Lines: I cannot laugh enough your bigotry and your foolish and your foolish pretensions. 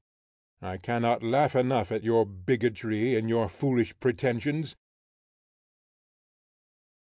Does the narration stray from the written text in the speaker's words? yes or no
yes